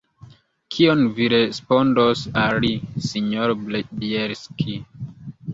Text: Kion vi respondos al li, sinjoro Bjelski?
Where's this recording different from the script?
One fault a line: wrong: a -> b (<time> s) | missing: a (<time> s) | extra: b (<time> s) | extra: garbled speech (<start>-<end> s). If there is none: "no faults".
no faults